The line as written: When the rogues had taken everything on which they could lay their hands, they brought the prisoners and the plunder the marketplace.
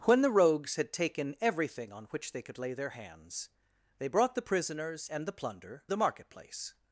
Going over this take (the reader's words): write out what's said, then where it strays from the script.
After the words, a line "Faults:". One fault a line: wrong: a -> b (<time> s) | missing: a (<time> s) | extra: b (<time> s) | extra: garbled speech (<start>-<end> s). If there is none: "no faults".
When the rogues had taken everything on which they could lay their hands, they brought the prisoners and the plunder the marketplace.
Faults:
no faults